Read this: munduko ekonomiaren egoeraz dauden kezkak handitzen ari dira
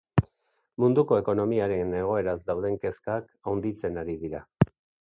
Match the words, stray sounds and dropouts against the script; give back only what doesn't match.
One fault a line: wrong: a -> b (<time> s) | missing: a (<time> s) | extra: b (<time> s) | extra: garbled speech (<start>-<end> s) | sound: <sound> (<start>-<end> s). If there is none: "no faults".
no faults